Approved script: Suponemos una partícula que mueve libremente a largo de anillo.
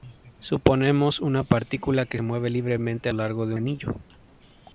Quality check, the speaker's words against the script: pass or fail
pass